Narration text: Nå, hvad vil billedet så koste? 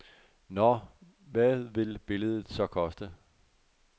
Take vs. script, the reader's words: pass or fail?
pass